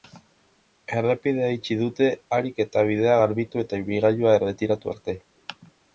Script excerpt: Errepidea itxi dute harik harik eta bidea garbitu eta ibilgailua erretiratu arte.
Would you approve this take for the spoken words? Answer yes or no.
no